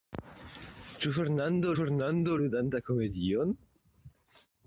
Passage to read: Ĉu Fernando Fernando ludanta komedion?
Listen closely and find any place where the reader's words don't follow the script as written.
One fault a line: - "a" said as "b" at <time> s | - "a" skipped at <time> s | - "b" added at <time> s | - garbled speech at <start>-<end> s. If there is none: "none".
none